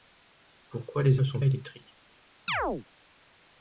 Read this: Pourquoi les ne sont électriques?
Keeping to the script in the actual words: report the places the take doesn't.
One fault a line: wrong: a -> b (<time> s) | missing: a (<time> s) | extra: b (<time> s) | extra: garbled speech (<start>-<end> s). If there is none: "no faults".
no faults